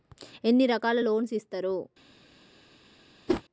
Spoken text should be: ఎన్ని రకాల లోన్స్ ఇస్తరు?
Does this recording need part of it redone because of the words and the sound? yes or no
yes